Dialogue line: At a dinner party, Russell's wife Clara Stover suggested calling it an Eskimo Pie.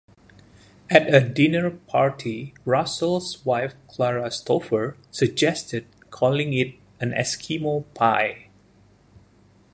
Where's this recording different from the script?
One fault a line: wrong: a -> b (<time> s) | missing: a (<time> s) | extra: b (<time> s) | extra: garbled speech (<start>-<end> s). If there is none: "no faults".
no faults